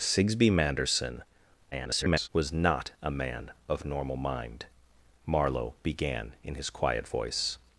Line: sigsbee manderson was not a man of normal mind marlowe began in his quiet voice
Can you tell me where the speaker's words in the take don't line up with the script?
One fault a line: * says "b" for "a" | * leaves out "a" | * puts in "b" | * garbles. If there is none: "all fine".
* garbles